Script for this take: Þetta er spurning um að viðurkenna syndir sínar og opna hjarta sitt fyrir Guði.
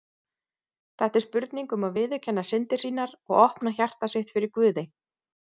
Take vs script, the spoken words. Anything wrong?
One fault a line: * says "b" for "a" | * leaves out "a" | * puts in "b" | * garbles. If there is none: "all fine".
all fine